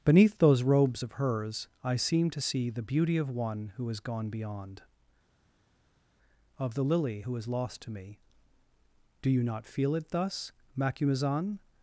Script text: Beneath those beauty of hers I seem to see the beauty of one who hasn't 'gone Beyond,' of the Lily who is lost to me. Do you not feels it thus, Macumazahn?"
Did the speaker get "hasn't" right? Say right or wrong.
wrong